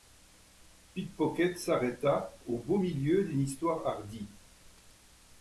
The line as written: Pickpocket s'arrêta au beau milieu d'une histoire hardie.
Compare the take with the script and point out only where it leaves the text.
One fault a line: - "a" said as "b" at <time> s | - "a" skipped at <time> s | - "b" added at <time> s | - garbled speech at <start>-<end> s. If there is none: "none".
none